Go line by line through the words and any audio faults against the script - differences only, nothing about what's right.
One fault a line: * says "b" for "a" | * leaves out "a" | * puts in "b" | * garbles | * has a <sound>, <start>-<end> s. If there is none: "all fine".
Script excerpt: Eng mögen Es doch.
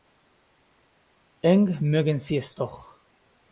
* puts in "Sie"